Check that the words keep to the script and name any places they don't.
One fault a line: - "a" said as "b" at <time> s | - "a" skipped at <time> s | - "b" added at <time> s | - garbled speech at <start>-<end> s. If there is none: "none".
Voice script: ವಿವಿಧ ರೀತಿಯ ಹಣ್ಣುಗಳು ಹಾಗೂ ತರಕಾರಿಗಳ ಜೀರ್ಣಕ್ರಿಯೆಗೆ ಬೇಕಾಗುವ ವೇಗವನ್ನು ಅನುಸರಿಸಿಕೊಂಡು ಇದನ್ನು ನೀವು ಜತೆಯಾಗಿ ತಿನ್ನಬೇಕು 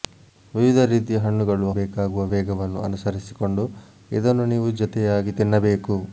- "ಹಾಗೂ ತರಕಾರಿಗಳ ಜೀರ್ಣಕ್ರಿಯೆಗೆ" skipped at 1.7 s